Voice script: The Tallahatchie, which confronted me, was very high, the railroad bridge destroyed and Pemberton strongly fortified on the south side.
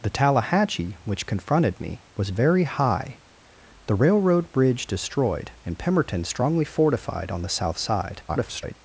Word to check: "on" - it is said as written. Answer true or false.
true